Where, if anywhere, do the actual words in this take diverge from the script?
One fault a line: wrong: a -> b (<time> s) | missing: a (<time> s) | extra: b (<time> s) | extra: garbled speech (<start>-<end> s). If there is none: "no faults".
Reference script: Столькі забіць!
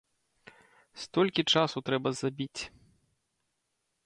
extra: часу трэба (1.6 s)